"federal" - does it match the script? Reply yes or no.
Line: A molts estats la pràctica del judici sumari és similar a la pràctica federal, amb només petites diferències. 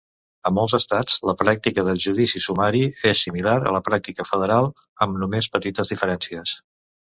yes